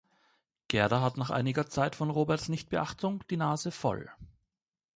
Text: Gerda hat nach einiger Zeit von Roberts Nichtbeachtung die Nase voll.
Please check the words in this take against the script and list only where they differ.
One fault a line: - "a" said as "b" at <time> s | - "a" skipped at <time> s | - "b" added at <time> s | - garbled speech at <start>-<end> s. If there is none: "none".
none